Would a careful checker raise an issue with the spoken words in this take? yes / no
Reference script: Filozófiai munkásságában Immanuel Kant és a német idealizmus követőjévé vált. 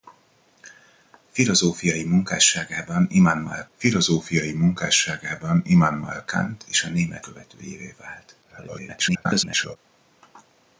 yes